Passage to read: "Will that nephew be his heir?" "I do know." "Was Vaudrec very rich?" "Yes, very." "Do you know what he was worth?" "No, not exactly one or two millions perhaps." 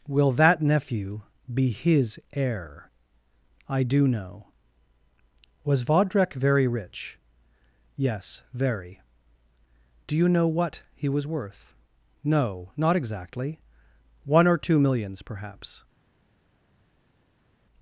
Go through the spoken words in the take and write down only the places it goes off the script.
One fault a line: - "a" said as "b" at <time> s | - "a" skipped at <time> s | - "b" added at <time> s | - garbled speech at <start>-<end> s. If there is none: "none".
none